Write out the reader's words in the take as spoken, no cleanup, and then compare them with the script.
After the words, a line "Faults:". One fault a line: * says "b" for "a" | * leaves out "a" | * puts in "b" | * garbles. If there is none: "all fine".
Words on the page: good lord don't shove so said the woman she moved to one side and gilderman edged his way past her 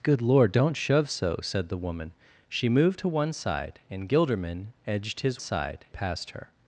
good lord don't shove so said the woman she moved to one side and gilderman edged his side past her
Faults:
* says "side" for "way"